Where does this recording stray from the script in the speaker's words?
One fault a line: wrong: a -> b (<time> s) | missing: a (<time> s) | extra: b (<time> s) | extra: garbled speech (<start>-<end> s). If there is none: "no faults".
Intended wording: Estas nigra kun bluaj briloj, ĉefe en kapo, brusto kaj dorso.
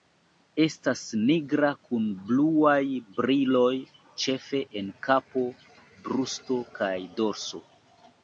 no faults